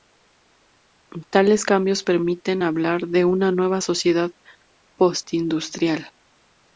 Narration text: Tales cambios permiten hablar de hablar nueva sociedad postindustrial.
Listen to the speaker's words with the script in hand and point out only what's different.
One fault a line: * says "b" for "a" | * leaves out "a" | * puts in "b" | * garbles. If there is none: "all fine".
* says "una" for "hablar"